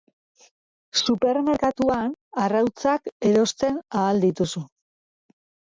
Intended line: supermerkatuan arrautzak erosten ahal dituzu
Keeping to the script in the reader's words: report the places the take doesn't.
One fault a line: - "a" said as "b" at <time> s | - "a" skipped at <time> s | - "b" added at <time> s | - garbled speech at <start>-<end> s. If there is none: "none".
none